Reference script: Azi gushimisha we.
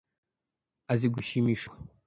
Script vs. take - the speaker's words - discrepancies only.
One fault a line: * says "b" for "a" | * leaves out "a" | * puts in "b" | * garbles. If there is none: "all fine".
all fine